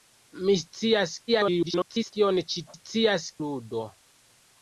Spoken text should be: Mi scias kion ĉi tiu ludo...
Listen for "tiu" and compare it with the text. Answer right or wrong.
wrong